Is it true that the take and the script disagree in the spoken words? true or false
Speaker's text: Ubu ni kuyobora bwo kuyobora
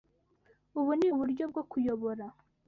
true